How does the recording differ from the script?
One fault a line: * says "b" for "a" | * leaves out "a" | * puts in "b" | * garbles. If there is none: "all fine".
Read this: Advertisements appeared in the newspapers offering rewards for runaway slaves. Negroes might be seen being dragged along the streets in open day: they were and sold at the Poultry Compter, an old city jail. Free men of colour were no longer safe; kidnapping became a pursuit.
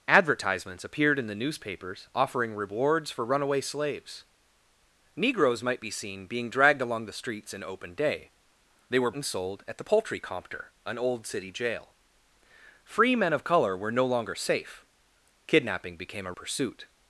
all fine